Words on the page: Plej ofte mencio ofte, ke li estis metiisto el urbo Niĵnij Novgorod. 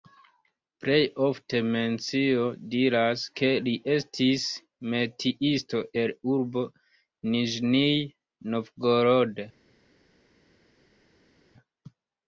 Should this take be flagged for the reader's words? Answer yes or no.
yes